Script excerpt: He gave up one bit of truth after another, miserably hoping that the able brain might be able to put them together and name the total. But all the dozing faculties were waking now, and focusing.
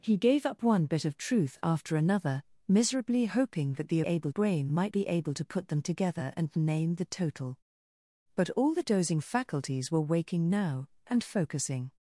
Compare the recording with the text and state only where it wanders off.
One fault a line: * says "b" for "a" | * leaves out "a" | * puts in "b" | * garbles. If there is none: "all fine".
all fine